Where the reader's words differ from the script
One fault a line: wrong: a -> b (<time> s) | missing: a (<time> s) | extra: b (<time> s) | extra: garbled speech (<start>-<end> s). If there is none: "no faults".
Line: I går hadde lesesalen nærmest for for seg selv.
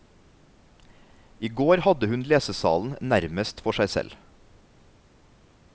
extra: hun (2.1 s)
missing: for (3.8 s)